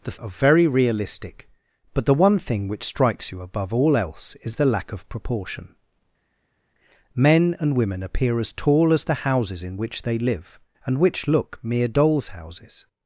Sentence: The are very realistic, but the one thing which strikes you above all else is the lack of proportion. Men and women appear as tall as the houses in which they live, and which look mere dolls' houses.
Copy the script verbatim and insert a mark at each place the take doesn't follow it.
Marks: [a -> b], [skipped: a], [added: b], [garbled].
The are very realistic, but the one thing which strikes you above all else is the lack of proportion. Men and women appear as tall as the houses in which they live, and which look mere dolls' houses.